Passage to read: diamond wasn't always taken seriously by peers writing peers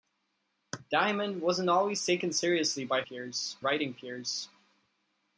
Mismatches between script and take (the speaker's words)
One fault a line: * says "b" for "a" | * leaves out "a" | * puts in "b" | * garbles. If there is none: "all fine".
all fine